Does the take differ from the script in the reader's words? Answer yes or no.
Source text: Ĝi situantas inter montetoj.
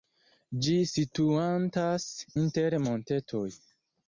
no